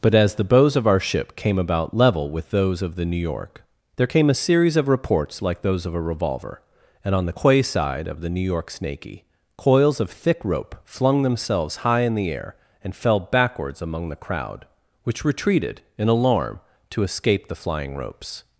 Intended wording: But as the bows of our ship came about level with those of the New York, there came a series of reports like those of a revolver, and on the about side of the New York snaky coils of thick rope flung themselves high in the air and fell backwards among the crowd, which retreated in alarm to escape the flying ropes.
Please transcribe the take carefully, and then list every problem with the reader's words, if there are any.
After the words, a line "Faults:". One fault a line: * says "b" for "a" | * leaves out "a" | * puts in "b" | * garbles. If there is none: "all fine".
But as the bows of our ship came about level with those of the New York, there came a series of reports like those of a revolver, and on the quay side of the New York snaky coils of thick rope flung themselves high in the air and fell backwards among the crowd, which retreated in alarm to escape the flying ropes.
Faults:
* says "quay" for "about"